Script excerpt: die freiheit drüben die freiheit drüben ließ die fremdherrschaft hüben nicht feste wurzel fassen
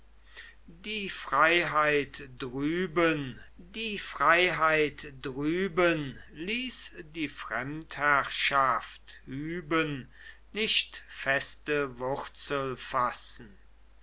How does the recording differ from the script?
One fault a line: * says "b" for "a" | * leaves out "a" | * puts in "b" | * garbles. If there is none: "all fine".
all fine